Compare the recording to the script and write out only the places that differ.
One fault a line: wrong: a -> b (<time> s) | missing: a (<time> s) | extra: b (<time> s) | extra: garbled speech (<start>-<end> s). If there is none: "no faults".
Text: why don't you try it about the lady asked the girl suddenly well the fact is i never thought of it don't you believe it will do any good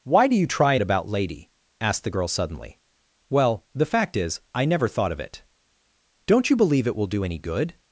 wrong: don't -> do (0.3 s)
missing: the (1.1 s)